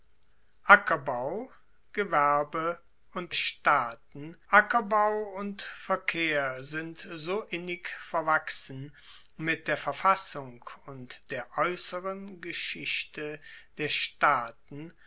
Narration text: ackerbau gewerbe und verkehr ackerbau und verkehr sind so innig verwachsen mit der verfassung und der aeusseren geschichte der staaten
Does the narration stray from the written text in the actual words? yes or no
yes